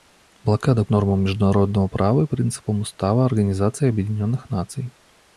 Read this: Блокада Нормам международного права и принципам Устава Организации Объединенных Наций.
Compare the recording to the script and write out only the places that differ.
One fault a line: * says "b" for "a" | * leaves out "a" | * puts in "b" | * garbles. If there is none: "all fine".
all fine